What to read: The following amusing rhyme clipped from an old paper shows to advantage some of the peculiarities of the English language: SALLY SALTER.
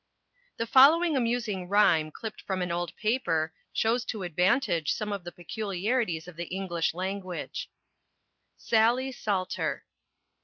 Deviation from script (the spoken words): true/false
false